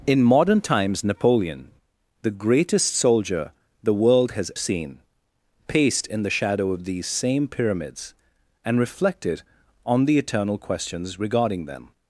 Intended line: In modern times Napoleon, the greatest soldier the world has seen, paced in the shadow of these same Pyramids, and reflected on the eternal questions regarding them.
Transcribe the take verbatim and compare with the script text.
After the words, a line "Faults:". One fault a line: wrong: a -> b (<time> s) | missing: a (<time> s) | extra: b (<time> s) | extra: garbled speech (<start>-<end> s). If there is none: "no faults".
In modern times Napoleon, the greatest soldier the world has seen, paced in the shadow of these same Pyramids, and reflected on the eternal questions regarding them.
Faults:
no faults